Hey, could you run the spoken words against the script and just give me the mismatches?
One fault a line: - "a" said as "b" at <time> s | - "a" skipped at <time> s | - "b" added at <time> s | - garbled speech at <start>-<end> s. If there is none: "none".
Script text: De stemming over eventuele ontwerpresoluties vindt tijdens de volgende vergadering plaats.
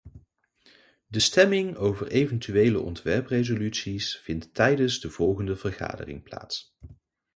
none